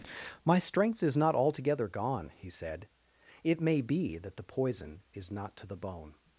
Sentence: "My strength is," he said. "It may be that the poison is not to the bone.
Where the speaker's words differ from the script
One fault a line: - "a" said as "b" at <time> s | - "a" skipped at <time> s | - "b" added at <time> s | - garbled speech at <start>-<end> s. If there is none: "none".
- "not altogether gone" added at 1.2 s